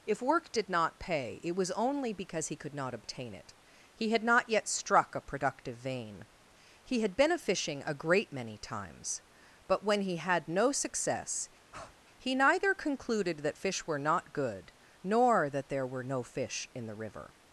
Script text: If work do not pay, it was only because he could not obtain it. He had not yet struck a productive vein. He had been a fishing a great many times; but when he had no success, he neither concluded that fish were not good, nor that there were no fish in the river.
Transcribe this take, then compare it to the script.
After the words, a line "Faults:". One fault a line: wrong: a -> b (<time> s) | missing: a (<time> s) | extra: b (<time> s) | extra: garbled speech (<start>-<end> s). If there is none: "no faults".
If work did not pay, it was only because he could not obtain it. He had not yet struck a productive vein. He had been a fishing a great many times; but when he had no success, he neither concluded that fish were not good, nor that there were no fish in the river.
Faults:
wrong: do -> did (0.5 s)